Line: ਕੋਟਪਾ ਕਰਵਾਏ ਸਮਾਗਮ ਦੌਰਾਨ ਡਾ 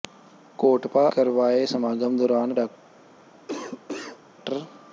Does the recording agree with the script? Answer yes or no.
yes